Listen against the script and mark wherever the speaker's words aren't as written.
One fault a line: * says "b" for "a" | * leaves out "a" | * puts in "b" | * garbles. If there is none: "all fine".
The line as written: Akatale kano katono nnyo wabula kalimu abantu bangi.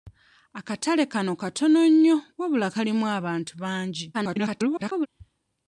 * garbles